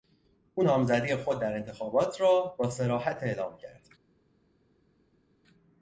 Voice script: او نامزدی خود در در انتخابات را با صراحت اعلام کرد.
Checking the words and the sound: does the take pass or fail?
fail